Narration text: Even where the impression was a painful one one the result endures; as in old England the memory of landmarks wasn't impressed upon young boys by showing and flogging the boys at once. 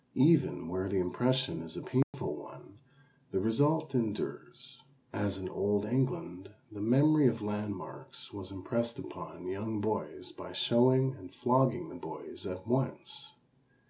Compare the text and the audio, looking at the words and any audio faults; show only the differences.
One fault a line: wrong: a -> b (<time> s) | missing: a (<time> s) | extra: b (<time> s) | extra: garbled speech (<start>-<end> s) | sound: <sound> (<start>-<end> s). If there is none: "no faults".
wrong: was -> is (1.6 s)
sound: dropout (2.0-2.1 s)
missing: one (2.8 s)
wrong: wasn't -> was (8.3 s)